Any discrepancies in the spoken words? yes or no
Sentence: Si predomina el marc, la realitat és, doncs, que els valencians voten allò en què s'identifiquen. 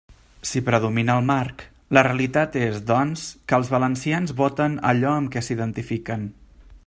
yes